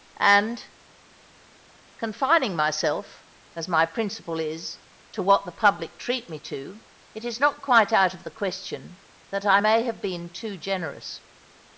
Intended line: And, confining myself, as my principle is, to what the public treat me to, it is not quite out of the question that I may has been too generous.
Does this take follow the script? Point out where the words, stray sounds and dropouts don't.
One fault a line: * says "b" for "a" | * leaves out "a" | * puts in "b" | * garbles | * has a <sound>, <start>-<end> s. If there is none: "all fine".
* says "have" for "has"